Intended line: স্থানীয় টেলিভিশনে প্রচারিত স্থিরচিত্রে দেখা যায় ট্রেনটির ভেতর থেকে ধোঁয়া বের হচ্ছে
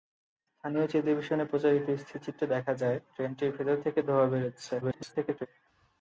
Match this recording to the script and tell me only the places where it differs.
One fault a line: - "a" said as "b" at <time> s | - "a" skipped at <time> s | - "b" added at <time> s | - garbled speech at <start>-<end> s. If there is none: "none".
- garbled speech at 4.8-5.5 s